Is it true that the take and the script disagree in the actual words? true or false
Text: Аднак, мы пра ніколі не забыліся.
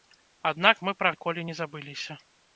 false